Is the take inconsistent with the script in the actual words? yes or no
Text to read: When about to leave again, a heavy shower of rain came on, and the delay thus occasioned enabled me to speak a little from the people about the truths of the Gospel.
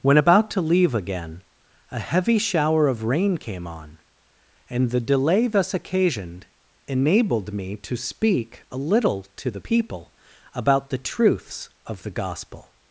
yes